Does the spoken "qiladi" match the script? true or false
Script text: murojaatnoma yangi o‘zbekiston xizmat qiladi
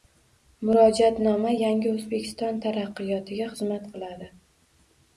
true